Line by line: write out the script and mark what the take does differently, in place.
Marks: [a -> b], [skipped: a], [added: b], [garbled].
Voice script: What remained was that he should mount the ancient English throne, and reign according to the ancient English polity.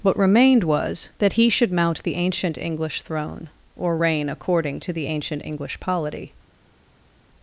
What remained was that he should mount the ancient English throne, [and -> or] reign according to the ancient English polity.